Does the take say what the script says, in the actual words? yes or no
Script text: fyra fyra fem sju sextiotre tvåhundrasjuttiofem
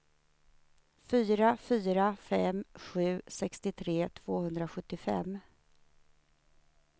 yes